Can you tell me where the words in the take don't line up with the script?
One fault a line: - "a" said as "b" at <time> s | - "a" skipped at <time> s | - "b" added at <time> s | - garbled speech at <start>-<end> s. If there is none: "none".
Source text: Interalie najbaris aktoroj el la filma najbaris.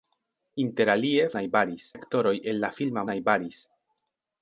none